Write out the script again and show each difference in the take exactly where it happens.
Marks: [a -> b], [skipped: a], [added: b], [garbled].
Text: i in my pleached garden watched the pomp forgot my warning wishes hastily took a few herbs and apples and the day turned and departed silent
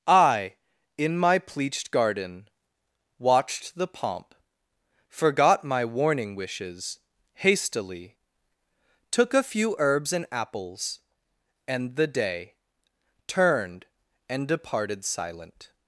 i in my pleached garden watched the pomp forgot my warning wishes hastily took a few herbs and apples and the day turned and departed silent